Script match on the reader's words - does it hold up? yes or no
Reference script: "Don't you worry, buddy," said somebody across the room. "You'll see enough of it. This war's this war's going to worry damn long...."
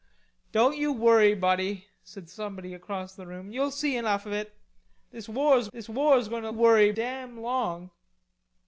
yes